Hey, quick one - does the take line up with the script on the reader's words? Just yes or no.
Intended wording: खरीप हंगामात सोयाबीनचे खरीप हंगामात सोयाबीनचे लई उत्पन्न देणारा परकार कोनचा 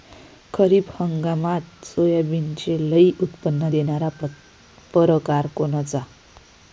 no